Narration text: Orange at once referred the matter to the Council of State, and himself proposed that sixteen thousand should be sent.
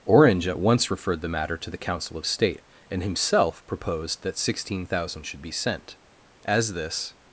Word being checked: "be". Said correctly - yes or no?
yes